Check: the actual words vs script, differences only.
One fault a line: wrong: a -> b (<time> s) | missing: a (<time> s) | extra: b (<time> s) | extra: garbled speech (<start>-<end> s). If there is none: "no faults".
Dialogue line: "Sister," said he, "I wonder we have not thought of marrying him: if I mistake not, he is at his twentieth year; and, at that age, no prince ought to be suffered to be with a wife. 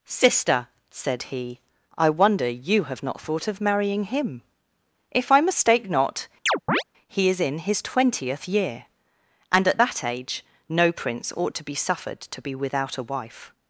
wrong: we -> you (2.5 s)
wrong: at -> in (7.4 s)
wrong: with -> without (12.5 s)